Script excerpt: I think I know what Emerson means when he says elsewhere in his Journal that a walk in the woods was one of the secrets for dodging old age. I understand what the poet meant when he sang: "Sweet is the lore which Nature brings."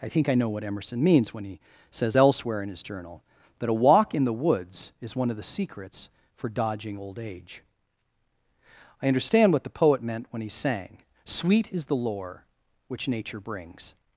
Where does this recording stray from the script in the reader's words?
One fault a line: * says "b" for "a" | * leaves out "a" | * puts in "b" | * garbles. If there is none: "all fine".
* says "is" for "was"